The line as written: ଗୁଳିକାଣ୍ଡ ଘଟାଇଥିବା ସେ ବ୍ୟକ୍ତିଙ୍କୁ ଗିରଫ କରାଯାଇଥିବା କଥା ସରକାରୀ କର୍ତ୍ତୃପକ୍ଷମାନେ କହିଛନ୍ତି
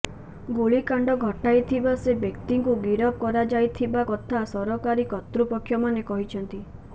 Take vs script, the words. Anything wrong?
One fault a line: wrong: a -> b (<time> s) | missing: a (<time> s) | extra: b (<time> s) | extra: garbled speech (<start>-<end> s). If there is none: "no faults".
no faults